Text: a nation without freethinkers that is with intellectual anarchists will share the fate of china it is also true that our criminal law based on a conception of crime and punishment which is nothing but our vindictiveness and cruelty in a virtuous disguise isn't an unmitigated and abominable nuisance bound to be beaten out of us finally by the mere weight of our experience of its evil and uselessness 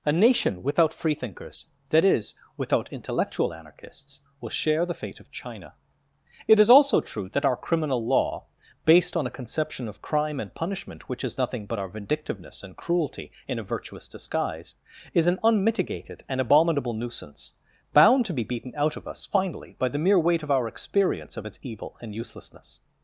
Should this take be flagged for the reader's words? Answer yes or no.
yes